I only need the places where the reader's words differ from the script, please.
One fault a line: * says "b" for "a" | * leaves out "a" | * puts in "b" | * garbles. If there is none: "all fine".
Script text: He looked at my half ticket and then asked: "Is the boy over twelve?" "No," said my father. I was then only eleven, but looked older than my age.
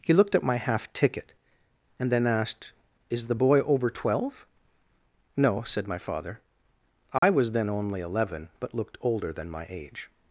all fine